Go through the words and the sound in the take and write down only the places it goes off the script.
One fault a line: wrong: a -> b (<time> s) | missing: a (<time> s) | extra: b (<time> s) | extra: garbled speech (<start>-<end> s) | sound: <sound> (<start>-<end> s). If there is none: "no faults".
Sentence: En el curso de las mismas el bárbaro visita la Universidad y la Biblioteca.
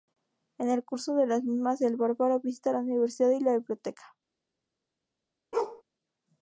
sound: bark (5.5-5.8 s)